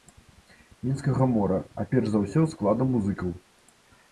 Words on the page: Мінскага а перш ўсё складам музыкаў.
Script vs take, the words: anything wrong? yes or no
yes